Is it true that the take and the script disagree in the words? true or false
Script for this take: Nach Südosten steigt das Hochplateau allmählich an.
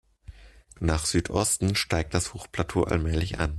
false